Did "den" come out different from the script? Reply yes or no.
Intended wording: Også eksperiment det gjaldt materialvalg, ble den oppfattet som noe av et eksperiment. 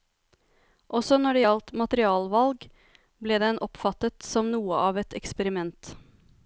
no